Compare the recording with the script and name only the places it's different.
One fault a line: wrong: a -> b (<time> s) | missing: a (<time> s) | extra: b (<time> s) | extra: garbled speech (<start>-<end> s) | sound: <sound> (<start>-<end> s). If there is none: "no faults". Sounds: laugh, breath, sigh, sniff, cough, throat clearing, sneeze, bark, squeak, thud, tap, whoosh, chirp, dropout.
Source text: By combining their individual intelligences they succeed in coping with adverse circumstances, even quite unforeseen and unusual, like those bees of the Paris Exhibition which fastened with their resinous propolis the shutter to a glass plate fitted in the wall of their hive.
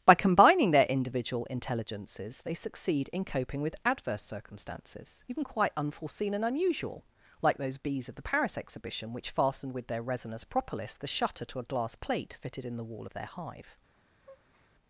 sound: breath (14.2-14.7 s)